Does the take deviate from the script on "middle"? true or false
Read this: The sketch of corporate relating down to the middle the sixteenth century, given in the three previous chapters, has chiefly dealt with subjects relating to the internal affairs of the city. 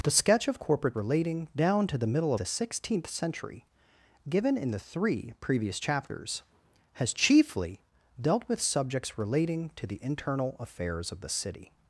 false